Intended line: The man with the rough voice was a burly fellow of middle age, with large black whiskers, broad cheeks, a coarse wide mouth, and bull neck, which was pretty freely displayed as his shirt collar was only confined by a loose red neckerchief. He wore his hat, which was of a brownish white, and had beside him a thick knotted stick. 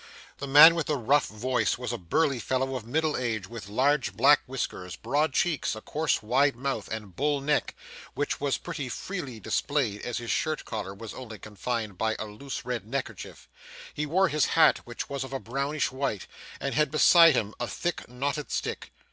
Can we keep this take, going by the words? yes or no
yes